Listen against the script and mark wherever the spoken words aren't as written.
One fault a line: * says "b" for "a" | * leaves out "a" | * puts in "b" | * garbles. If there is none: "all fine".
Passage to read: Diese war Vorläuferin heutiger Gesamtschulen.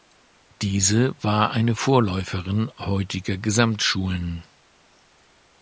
* puts in "eine"